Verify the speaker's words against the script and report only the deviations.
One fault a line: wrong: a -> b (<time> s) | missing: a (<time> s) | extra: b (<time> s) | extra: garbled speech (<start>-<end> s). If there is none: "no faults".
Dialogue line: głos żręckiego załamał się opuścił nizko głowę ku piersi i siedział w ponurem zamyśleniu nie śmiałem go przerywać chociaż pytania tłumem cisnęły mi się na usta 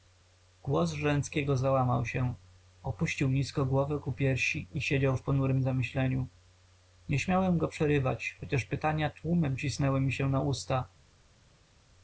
no faults